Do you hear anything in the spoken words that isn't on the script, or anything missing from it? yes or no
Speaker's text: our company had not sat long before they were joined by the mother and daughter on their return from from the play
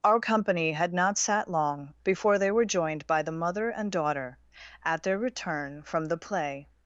yes